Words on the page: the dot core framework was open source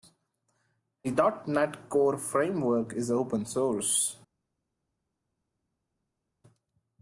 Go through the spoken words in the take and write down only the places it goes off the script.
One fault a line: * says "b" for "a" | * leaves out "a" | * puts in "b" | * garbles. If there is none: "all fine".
* puts in "net"
* says "is" for "was"